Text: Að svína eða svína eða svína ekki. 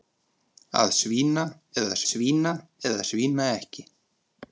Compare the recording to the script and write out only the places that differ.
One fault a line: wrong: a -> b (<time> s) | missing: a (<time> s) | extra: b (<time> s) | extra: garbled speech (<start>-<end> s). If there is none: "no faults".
no faults